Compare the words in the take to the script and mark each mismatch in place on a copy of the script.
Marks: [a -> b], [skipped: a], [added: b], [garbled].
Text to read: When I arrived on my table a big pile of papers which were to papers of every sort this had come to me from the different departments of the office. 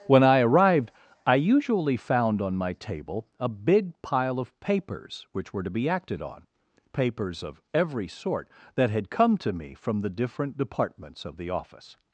When I arrived [added: I usually found] on my table a big pile of papers which were to [added: be acted on] papers of every sort [this -> that] had come to me from the different departments of the office.